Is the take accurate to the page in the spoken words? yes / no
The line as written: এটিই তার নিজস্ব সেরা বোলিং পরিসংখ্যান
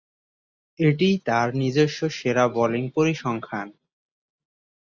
yes